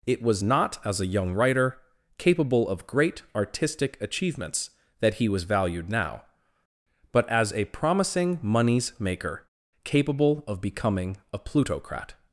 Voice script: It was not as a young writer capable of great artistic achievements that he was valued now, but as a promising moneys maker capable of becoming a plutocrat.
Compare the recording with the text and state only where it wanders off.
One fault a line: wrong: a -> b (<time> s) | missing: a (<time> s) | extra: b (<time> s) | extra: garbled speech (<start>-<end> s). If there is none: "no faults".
no faults